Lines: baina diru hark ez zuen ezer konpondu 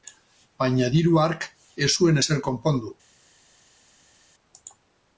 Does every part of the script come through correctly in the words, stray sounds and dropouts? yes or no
yes